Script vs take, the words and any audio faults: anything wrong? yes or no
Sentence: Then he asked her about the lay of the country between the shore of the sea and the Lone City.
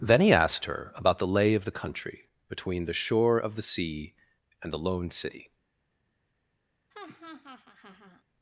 yes